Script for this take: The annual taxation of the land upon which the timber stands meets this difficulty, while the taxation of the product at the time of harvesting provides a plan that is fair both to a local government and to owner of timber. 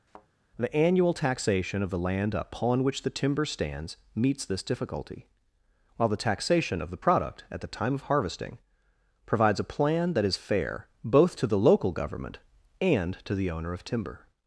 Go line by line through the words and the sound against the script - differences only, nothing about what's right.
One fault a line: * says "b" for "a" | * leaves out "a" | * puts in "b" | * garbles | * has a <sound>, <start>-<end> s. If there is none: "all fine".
* has a thud, 0.1-0.3 s
* says "the" for "a"
* puts in "the"